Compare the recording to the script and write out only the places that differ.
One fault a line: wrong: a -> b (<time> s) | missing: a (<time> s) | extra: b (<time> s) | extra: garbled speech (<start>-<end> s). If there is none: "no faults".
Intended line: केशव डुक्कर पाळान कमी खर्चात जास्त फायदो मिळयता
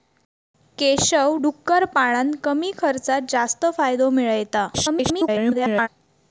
extra: garbled speech (4.7-5.9 s)